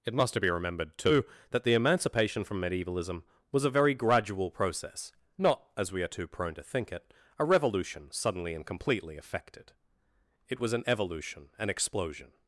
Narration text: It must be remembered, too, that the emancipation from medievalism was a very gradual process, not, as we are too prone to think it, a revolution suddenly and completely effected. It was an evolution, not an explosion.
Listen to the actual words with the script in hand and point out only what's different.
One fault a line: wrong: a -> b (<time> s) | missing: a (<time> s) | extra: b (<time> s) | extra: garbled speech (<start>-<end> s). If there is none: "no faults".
missing: not (11.5 s)